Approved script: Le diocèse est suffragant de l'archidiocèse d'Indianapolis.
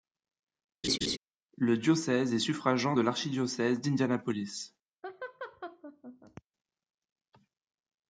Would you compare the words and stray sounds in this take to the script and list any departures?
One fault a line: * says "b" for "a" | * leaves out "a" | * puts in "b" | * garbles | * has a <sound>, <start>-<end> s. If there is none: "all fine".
* has a laugh, 0.8-1.2 s
* has a laugh, 5.0-6.4 s